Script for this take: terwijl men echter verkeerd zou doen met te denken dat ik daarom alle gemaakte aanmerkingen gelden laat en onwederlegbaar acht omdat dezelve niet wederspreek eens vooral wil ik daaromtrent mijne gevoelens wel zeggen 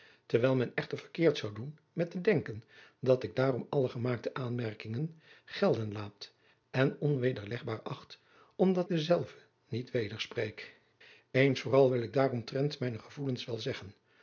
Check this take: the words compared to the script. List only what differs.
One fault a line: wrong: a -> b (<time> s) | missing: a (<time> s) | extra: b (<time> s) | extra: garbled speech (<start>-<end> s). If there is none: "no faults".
no faults